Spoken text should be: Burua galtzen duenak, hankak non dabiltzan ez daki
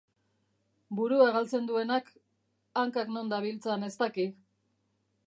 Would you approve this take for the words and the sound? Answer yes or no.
yes